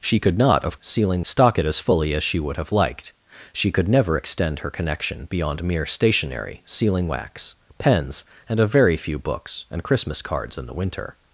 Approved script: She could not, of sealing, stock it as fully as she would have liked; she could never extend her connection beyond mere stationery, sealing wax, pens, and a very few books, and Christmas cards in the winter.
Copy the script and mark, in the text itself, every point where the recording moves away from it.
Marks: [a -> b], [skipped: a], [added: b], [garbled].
She could not, of sealing, stock it as fully as she would have liked; she could never extend her connection beyond mere stationery, sealing wax, pens, and a very few books, and Christmas cards in the winter.